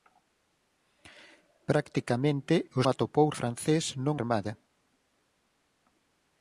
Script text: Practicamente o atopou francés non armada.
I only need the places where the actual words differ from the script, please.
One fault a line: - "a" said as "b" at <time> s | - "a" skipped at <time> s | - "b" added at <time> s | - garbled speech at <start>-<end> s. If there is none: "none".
none